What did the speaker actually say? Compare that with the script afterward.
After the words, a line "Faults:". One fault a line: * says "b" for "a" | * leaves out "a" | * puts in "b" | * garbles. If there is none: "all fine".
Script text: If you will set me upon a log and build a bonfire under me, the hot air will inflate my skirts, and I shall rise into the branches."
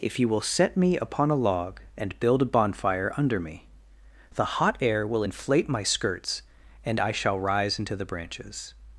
If you will set me upon a log and build a bonfire under me, the hot air will inflate my skirts, and I shall rise into the branches."
Faults:
all fine